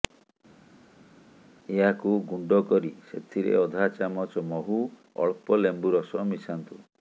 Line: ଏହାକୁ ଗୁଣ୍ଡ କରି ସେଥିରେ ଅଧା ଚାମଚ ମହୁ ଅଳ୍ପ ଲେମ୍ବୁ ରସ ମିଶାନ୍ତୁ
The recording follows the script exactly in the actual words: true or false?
true